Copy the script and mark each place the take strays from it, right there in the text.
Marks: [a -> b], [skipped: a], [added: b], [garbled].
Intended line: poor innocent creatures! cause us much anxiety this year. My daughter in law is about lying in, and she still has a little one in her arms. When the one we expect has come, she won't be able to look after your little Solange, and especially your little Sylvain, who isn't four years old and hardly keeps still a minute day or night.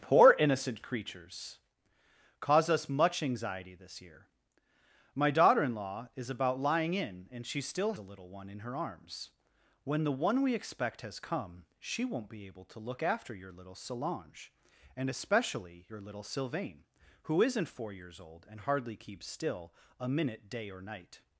poor innocent creatures! cause us much anxiety this year. My daughter in law is about lying in, and she still [skipped: has] a little one in her arms. When the one we expect has come, she won't be able to look after your little Solange, and especially your little Sylvain, who isn't four years old and hardly keeps still a minute day or night.